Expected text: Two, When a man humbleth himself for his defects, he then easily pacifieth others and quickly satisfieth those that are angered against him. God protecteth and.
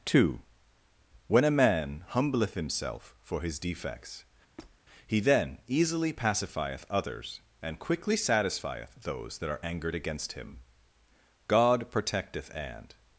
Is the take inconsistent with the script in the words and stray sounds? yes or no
yes